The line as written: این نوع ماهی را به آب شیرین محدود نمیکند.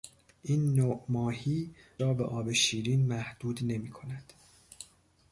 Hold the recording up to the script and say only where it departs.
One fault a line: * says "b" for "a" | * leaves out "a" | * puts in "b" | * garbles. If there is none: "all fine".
all fine